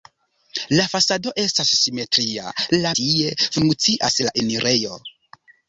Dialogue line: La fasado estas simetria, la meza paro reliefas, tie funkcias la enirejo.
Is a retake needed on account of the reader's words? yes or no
yes